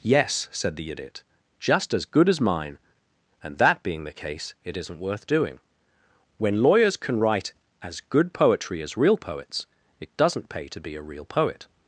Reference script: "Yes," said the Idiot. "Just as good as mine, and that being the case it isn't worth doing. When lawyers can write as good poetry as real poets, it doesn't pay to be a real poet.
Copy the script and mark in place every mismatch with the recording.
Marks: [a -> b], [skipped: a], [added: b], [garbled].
"Yes," said the Idiot. "Just as good as mine, and that being the case it isn't worth doing. When lawyers can write as good poetry as real poets, it doesn't pay to be a real poet.